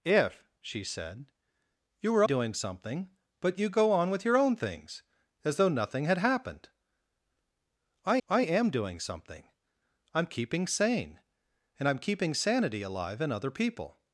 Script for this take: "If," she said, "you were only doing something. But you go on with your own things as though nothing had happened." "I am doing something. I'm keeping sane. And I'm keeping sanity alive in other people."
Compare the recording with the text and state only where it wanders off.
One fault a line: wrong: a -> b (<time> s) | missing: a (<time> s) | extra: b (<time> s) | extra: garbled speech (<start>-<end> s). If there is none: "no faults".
missing: only (2.2 s)
extra: I (8.3 s)